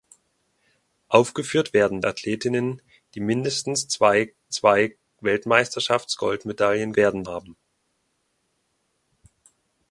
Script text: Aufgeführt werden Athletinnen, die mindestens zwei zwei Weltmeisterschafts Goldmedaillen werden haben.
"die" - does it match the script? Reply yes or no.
yes